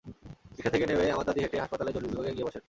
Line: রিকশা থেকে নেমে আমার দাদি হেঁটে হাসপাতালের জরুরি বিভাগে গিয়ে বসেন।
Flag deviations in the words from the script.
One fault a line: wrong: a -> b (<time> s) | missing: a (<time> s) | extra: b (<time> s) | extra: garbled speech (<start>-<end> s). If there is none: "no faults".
no faults